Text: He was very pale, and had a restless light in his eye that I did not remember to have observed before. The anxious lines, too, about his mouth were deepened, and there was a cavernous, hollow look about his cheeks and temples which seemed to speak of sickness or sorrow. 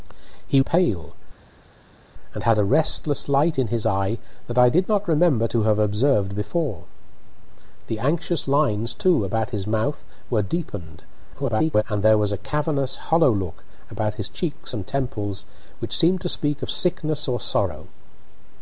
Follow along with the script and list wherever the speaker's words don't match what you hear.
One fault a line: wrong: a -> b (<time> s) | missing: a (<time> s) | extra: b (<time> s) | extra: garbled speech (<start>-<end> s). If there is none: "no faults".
missing: was very (0.6 s)
extra: garbled speech (11.3-11.8 s)